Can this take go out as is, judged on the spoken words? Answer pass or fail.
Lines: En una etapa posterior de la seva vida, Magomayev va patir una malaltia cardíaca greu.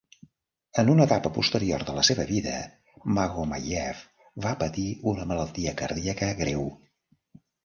pass